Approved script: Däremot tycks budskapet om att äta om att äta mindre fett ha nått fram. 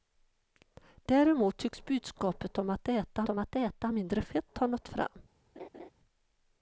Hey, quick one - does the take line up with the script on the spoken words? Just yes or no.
yes